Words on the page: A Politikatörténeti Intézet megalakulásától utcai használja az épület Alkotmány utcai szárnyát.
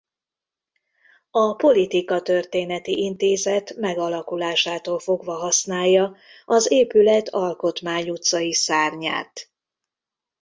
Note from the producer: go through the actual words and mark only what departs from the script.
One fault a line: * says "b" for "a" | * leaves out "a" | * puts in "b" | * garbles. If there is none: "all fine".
* says "fogva" for "utcai"